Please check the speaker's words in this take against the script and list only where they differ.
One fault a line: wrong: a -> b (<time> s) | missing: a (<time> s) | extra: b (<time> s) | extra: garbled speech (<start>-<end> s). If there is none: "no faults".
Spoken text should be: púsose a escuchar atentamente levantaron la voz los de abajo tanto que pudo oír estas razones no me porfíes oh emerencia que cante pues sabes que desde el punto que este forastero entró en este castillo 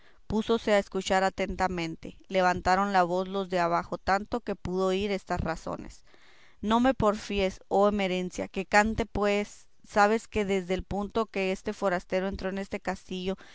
no faults